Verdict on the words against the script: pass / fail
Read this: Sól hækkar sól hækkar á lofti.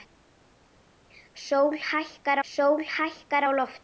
pass